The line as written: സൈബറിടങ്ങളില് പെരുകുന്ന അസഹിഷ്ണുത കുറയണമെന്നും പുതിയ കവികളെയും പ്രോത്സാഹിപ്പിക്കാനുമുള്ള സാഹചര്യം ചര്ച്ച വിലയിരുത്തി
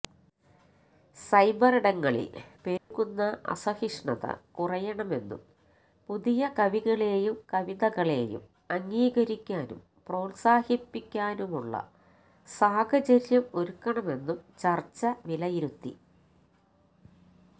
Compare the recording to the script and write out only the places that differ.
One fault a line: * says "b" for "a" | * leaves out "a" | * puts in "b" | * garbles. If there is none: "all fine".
* puts in "കവിതകളെയും അംഗീകരിക്കാനും"
* puts in "ഒരുക്കണമെന്നും"